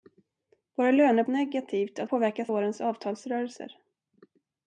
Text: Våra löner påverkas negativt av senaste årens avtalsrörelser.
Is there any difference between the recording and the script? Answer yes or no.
yes